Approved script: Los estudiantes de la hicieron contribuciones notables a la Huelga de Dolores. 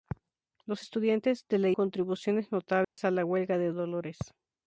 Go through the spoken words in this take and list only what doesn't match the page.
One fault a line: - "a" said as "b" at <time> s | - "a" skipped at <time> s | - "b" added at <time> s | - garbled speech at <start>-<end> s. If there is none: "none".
- "hicieron" skipped at 1.7 s